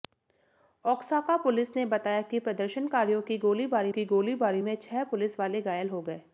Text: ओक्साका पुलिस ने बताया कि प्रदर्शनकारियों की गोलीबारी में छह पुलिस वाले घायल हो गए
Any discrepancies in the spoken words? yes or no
yes